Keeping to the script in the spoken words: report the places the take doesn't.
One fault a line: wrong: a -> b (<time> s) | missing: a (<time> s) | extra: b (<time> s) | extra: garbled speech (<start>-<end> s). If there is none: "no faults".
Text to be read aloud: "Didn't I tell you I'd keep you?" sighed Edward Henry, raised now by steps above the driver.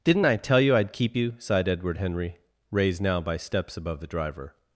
no faults